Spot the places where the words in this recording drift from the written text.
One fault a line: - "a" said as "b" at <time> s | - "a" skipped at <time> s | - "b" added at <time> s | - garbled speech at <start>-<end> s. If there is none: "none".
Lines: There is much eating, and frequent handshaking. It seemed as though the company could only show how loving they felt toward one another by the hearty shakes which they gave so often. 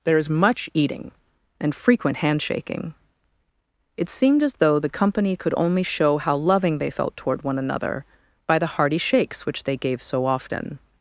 none